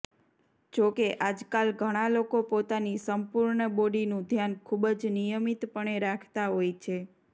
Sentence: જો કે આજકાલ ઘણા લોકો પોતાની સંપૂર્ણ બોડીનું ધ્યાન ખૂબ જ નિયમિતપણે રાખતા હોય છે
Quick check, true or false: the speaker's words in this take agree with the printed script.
true